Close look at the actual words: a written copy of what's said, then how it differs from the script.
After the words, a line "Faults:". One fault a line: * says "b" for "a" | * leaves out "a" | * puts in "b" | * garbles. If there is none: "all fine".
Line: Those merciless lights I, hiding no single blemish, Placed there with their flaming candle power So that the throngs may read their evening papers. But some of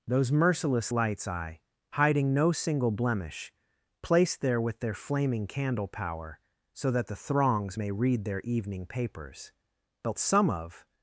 Those merciless lights I, hiding no single blemish, Placed there with their flaming candle power So that the throngs may read their evening papers. But some of
Faults:
all fine